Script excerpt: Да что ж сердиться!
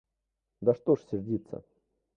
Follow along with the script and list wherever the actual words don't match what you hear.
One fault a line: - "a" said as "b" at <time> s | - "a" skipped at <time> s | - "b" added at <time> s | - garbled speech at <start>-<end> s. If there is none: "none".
none